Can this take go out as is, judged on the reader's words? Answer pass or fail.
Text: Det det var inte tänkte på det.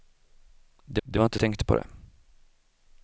pass